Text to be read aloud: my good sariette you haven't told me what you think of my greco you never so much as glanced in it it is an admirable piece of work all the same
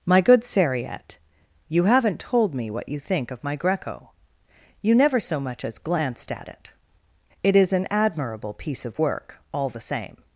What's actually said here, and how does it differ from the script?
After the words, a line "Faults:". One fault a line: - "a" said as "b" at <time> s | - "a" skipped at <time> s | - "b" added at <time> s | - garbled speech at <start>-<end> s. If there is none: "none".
my good sariette you haven't told me what you think of my greco you never so much as glanced at it it is an admirable piece of work all the same
Faults:
- "in" said as "at" at 6.3 s